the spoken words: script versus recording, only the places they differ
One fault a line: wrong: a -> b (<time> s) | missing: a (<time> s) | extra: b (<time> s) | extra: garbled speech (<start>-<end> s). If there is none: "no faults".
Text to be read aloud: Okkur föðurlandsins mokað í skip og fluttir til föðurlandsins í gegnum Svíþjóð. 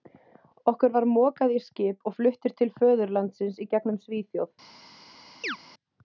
wrong: föðurlandsins -> var (0.9 s)